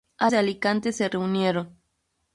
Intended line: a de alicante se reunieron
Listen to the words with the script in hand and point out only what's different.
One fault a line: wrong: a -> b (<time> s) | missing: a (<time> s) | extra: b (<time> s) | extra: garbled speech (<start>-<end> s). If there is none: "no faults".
no faults